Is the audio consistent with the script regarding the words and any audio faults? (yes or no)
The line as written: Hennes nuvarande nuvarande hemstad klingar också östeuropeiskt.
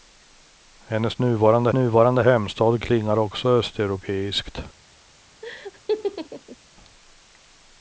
no